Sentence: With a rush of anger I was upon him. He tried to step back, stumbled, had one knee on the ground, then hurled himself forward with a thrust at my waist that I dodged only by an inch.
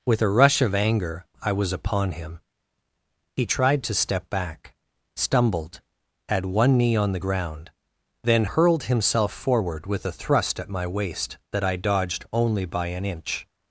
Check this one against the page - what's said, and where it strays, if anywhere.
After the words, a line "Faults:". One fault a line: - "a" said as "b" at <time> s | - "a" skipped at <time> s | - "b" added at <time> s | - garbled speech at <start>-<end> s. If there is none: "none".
With a rush of anger I was upon him. He tried to step back, stumbled, had one knee on the ground, then hurled himself forward with a thrust at my waist that I dodged only by an inch.
Faults:
none